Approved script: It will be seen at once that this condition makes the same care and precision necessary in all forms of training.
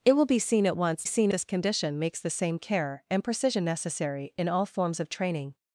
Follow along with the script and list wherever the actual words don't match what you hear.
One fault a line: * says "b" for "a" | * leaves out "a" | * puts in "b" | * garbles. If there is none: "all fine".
* says "seen" for "that"